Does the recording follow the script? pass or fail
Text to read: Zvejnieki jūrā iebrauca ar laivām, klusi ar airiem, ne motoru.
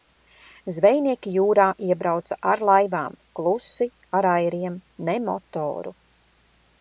pass